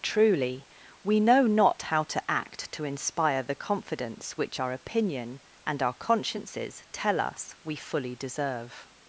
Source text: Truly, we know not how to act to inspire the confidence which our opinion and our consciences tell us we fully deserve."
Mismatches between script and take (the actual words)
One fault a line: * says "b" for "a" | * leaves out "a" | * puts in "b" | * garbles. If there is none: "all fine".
all fine